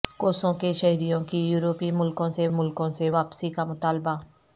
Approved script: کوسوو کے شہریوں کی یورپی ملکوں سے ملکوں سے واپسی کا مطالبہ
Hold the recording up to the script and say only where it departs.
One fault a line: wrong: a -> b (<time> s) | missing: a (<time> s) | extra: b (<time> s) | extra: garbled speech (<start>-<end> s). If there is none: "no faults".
no faults